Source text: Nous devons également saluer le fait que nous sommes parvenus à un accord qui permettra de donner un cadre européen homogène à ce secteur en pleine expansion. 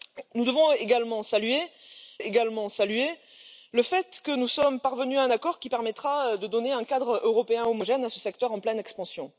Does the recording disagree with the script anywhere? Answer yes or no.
yes